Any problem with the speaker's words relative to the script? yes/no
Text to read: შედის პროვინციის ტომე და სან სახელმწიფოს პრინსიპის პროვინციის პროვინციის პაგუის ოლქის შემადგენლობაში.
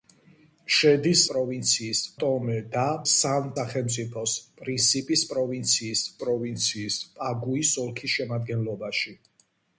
no